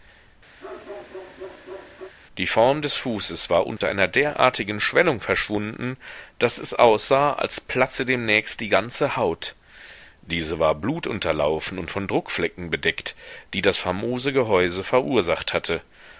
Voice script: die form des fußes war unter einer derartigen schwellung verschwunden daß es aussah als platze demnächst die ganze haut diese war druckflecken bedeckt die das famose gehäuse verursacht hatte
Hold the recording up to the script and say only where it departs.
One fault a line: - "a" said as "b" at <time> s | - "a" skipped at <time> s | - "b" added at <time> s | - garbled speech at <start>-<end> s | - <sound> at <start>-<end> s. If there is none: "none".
- bark at 0.6-2.1 s
- dropout at 3.8-3.8 s
- "blutunterlaufen und von" added at 10.7 s